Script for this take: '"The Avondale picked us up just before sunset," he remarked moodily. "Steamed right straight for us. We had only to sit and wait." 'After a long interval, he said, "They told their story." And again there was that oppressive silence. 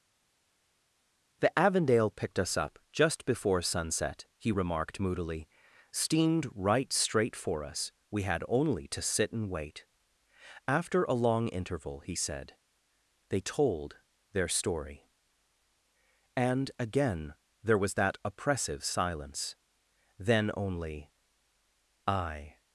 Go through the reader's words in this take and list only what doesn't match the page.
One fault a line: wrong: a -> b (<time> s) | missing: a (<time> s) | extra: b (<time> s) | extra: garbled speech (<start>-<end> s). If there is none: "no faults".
extra: Then only I (20.2 s)